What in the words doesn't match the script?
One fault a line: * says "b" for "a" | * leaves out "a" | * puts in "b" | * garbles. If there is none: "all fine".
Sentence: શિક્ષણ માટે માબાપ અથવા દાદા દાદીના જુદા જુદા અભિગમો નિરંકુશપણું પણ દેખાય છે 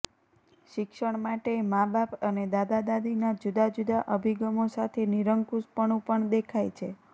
* says "અને" for "અથવા"
* puts in "સાથે"